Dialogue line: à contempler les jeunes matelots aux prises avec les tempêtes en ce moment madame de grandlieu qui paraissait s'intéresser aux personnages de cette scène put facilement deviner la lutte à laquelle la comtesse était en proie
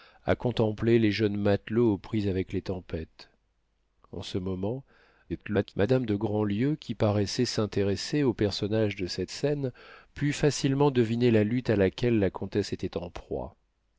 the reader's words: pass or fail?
fail